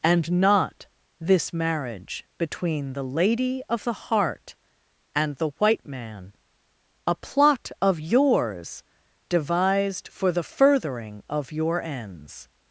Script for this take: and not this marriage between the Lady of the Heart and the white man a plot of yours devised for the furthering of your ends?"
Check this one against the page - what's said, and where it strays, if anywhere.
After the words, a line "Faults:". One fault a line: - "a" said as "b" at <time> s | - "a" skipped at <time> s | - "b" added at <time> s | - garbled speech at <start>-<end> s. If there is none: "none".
and not this marriage between the Lady of the Heart and the white man a plot of yours devised for the furthering of your ends?"
Faults:
none